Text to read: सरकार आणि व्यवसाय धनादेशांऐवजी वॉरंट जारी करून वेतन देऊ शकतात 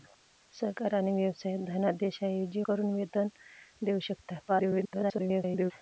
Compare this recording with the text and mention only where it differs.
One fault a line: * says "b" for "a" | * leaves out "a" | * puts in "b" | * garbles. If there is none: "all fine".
* leaves out "वॉरंट जारी"
* garbles